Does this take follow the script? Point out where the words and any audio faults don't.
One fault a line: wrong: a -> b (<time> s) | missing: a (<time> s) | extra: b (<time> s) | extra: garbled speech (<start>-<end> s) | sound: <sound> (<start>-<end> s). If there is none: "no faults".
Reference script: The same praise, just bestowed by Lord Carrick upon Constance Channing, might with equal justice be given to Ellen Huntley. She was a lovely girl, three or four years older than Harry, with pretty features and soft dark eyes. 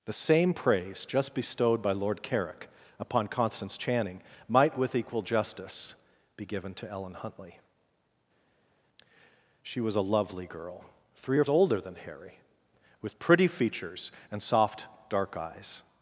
missing: four years (11.4 s)